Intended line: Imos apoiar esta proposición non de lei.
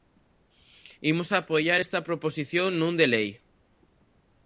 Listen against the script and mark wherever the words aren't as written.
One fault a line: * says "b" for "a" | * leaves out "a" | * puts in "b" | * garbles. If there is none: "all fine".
all fine